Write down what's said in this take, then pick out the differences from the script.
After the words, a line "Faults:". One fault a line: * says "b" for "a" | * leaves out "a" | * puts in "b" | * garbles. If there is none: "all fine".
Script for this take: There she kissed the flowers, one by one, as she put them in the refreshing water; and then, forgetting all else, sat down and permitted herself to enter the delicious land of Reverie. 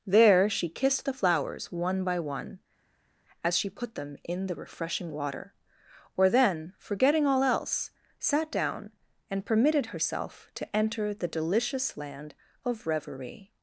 There she kissed the flowers, one by one, as she put them in the refreshing water; or then, forgetting all else, sat down and permitted herself to enter the delicious land of Reverie.
Faults:
* says "or" for "and"